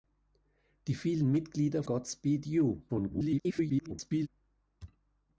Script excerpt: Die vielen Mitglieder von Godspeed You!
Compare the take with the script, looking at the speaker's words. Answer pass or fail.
fail